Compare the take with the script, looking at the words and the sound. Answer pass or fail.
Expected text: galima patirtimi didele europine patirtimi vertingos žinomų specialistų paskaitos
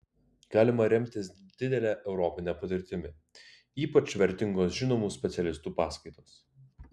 fail